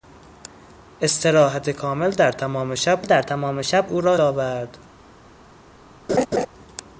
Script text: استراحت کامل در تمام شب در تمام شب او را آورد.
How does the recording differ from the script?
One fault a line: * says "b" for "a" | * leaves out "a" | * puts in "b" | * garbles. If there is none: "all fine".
all fine